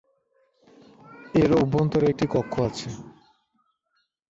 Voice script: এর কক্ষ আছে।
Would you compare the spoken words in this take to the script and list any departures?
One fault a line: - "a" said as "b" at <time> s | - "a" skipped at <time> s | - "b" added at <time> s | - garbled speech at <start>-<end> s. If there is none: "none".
- "অভ্যন্তরে একটি" added at 1.6 s